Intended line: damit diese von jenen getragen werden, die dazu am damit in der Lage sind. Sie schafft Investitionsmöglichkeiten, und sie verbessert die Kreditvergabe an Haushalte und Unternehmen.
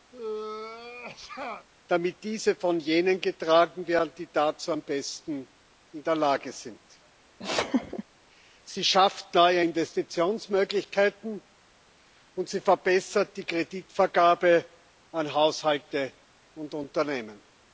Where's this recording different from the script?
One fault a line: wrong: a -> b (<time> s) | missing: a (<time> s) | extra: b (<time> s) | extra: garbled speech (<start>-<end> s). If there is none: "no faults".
wrong: damit -> besten (4.8 s)
extra: neue (9.3 s)